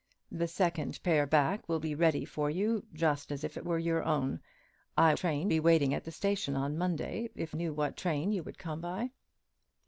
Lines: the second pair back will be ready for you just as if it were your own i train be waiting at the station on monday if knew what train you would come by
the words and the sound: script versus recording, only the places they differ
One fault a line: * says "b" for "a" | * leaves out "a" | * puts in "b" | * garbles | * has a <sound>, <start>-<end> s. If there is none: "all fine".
all fine